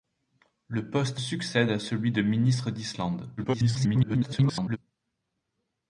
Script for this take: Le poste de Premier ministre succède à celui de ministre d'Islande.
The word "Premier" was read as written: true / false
false